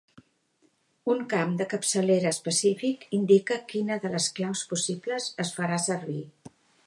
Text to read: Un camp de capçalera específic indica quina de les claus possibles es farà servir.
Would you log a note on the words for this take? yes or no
no